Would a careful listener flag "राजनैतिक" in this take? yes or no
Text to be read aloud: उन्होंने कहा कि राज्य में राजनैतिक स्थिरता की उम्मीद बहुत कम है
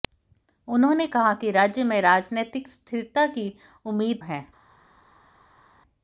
no